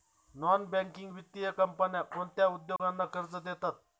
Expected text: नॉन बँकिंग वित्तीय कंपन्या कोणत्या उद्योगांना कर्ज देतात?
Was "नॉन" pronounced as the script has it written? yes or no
yes